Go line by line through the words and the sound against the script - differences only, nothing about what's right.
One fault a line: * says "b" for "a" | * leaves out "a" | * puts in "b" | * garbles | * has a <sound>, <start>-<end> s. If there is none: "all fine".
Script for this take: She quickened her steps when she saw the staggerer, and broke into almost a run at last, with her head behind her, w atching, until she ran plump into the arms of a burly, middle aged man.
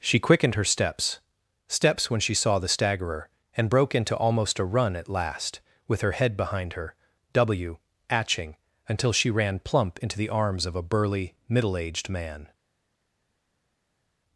* puts in "steps"